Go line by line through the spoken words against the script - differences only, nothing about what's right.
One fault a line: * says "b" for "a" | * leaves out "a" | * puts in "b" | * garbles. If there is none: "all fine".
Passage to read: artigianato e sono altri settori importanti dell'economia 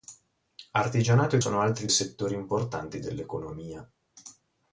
all fine